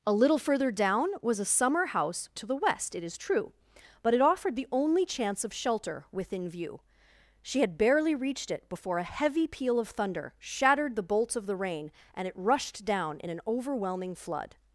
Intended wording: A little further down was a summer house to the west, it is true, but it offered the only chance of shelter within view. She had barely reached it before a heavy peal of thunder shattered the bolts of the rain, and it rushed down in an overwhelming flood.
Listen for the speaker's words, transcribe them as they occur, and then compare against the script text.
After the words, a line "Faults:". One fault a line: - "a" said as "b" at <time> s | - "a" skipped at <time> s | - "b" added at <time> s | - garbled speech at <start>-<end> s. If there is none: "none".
A little further down was a summer house to the west, it is true, but it offered the only chance of shelter within view. She had barely reached it before a heavy peal of thunder shattered the bolts of the rain, and it rushed down in an overwhelming flood.
Faults:
none